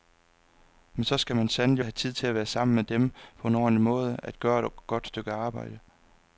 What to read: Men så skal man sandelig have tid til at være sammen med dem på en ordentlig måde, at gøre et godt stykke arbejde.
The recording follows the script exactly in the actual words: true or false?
true